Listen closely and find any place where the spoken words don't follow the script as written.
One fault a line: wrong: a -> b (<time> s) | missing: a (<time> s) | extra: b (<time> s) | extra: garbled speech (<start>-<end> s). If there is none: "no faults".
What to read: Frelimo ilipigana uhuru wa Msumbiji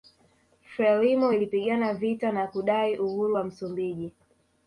extra: vita na kudai (1.9 s)